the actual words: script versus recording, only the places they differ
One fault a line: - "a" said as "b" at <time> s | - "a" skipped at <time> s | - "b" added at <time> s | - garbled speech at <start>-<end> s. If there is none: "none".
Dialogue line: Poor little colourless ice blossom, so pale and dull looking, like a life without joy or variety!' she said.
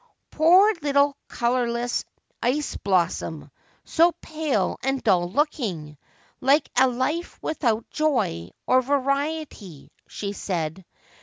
none